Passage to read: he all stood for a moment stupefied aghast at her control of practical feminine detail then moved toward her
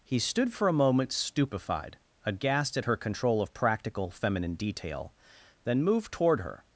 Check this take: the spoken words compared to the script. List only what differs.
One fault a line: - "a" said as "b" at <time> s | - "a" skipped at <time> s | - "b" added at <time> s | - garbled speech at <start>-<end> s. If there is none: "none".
- "all" skipped at 0.2 s